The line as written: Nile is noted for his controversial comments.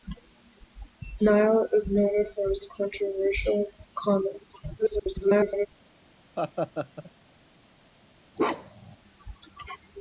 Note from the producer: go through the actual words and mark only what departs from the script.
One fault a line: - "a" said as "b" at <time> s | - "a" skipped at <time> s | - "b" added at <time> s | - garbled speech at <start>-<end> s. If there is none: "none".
- garbled speech at 4.8-5.7 s